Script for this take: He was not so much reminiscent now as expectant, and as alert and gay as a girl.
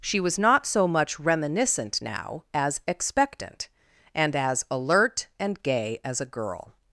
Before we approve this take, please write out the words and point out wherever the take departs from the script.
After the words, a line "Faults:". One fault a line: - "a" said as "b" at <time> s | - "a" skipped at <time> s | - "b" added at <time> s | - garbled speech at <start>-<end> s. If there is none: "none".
She was not so much reminiscent now as expectant, and as alert and gay as a girl.
Faults:
- "He" said as "She" at 0.0 s